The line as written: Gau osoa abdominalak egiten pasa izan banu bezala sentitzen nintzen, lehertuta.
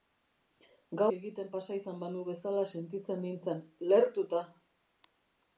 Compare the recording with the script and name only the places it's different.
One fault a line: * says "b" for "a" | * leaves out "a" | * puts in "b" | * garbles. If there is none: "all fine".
* leaves out "osoa abdominalak"